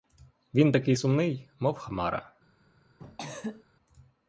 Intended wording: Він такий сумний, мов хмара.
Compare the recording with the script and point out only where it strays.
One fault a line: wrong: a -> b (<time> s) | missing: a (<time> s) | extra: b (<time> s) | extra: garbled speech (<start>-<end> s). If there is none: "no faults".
no faults